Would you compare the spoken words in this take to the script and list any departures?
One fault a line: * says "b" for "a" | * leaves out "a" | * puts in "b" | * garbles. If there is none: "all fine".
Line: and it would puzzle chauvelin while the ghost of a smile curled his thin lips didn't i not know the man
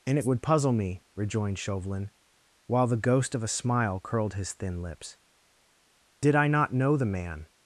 * puts in "me rejoined"
* says "did" for "didn't"